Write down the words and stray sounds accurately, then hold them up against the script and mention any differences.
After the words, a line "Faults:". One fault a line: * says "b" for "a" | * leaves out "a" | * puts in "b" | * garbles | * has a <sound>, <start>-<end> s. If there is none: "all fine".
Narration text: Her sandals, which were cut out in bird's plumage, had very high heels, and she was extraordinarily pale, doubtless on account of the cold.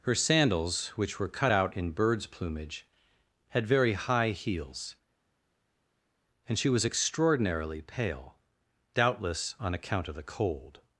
Her sandals, which were cut out in bird's plumage, had very high heels, and she was extraordinarily pale, doubtless on account of the cold.
Faults:
all fine